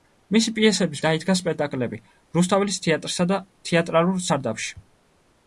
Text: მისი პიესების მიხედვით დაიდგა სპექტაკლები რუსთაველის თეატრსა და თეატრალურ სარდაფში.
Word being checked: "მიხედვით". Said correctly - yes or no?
no